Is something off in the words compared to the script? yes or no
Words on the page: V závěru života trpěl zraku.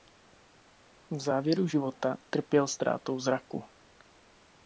yes